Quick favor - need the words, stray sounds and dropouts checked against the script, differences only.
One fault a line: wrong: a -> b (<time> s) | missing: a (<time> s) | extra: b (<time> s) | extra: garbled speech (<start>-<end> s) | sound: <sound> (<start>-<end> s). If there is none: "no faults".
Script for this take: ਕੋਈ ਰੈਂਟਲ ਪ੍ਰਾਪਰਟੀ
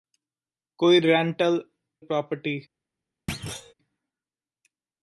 sound: thud (3.3-3.7 s)